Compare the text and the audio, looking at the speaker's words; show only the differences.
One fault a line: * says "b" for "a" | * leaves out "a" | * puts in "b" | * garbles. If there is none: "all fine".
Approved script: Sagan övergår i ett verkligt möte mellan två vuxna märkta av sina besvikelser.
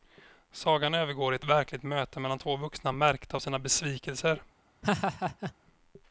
all fine